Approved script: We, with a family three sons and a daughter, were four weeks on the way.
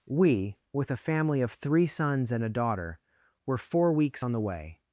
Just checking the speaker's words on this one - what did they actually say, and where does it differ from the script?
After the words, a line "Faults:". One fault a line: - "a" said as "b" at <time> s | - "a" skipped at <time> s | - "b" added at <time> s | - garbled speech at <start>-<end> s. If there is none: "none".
We, with a family of three sons and a daughter, were four weeks on the way.
Faults:
- "of" added at 1.4 s